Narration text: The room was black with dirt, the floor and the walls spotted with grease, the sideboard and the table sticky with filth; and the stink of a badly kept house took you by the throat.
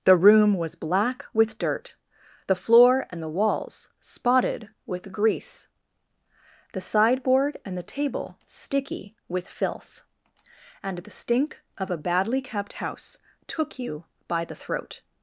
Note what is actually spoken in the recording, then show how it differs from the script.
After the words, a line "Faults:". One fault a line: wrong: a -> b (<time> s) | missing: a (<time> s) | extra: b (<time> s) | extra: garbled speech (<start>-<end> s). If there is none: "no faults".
The room was black with dirt, the floor and the walls spotted with grease, the sideboard and the table sticky with filth; and the stink of a badly kept house took you by the throat.
Faults:
no faults